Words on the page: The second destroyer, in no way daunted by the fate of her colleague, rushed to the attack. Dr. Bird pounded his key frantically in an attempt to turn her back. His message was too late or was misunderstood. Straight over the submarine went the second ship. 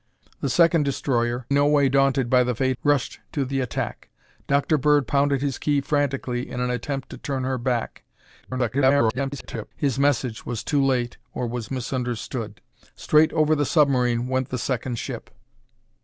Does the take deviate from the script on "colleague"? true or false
true